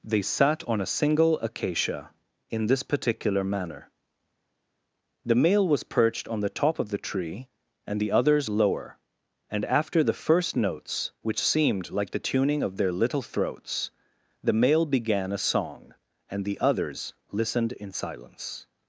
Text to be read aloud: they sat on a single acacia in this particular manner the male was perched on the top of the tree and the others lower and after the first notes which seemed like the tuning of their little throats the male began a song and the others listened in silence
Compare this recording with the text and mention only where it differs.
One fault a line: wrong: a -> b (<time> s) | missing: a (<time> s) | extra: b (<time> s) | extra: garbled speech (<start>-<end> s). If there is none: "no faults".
no faults